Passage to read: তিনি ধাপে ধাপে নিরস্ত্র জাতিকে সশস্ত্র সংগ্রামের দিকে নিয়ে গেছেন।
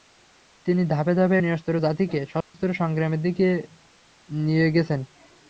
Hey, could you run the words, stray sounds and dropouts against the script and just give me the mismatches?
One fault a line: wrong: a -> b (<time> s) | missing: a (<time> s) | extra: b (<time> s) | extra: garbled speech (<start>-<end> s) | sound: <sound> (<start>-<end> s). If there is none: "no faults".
sound: dropout (2.4-2.5 s)